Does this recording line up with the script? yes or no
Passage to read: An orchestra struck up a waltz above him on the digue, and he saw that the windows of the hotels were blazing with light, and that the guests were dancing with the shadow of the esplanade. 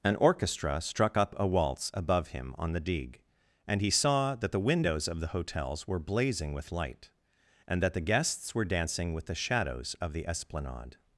no